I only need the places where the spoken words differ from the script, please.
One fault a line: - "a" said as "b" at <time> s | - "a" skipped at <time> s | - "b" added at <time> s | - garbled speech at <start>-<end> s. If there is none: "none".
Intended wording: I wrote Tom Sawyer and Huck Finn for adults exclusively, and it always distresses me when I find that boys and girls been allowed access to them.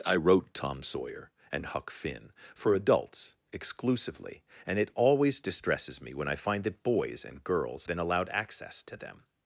none